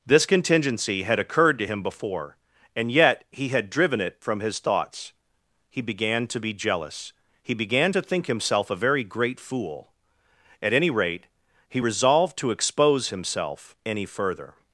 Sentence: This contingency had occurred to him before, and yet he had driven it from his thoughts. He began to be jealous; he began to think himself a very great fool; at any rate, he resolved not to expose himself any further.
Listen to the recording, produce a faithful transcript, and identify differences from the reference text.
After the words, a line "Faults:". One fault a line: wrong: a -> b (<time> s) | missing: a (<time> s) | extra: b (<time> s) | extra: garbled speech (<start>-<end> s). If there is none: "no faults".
This contingency had occurred to him before, and yet he had driven it from his thoughts. He began to be jealous; he began to think himself a very great fool; at any rate, he resolved to expose himself any further.
Faults:
missing: not (12.4 s)